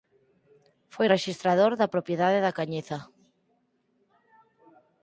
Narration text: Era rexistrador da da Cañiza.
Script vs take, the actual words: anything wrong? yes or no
yes